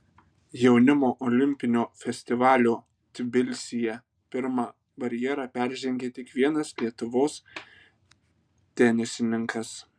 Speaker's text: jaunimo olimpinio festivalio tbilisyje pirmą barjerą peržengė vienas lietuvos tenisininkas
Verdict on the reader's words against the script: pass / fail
fail